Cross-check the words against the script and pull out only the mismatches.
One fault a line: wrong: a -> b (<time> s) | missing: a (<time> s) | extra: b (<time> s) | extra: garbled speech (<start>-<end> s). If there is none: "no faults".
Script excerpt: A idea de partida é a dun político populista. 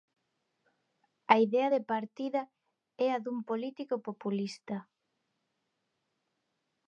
no faults